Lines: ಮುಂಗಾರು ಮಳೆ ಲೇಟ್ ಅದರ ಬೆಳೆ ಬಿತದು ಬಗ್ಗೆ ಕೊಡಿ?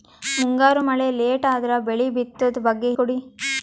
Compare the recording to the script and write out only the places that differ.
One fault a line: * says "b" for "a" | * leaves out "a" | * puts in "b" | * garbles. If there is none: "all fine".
all fine